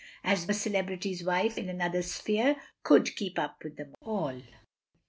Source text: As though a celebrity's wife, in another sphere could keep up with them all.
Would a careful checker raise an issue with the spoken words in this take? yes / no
yes